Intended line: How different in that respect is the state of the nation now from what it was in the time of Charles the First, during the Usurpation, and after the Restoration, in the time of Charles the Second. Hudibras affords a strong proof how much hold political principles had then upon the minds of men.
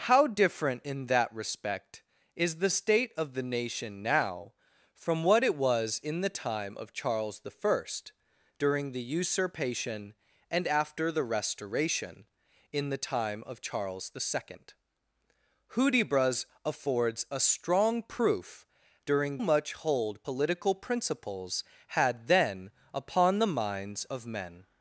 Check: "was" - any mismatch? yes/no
no